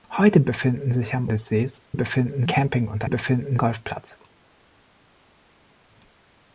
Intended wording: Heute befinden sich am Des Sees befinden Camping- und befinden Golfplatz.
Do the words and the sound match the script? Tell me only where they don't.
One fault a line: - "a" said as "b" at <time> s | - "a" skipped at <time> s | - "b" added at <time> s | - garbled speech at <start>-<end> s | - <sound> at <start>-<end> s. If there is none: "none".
none